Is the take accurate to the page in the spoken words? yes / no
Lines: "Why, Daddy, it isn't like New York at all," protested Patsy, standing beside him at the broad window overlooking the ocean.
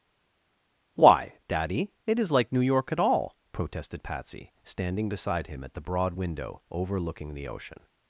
no